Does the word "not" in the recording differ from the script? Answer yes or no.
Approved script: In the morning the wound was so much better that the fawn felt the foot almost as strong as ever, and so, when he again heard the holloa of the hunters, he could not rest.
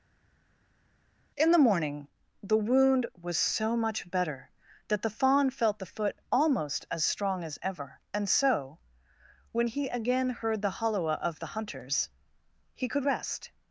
yes